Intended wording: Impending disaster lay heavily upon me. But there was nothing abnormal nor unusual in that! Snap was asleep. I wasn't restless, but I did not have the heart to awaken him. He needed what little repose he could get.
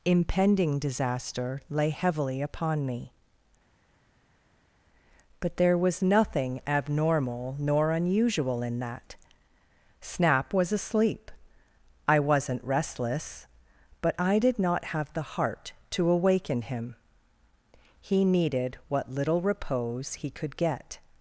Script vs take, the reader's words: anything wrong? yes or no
no